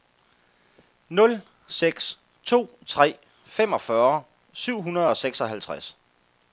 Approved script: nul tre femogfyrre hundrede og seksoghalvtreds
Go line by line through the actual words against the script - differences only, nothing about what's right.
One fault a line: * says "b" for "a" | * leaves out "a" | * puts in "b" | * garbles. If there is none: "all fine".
* puts in "seks to"
* puts in "syv"